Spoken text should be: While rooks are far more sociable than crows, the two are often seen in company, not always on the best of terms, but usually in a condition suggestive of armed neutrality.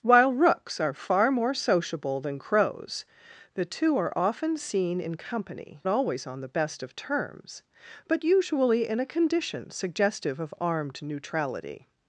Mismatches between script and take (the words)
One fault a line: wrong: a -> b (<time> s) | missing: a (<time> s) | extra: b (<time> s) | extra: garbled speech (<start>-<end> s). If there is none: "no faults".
missing: not (5.8 s)